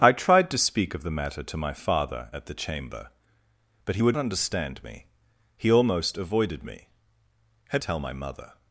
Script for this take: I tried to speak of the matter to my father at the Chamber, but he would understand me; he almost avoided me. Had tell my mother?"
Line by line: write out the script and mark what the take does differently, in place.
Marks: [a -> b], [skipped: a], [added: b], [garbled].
I tried to speak of the matter to my father at the Chamber, but he would understand me; he almost avoided me. Had tell my mother?"